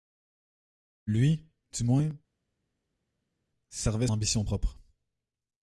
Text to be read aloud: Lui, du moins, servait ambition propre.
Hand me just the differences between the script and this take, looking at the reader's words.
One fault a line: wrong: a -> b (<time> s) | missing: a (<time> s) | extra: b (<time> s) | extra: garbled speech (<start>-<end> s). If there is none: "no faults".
no faults